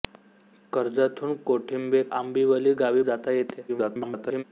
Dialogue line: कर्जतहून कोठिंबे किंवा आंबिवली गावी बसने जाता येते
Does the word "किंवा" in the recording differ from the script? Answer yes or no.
yes